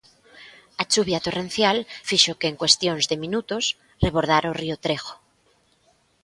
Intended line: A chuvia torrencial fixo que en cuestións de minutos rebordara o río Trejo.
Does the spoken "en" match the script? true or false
true